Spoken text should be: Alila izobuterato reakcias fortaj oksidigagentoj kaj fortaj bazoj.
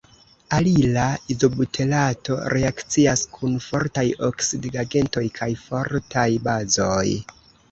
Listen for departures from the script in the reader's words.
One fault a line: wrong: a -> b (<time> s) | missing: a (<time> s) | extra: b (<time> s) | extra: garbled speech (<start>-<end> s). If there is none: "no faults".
extra: kun (3.4 s)